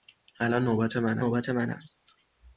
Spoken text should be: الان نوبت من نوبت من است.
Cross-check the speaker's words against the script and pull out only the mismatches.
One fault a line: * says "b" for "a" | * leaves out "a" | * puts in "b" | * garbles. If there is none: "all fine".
all fine